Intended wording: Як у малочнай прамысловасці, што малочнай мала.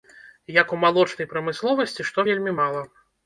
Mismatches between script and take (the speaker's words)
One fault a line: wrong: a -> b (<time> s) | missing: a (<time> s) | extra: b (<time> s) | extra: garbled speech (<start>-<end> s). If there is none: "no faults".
wrong: малочнай -> вельмі (2.3 s)